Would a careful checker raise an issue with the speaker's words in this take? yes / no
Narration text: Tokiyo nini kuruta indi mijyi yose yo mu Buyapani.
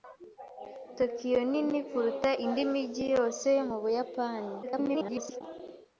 yes